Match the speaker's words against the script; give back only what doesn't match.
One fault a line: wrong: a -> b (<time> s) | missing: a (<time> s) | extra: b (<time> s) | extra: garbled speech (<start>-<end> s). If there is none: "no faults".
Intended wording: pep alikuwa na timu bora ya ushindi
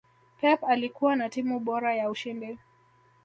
no faults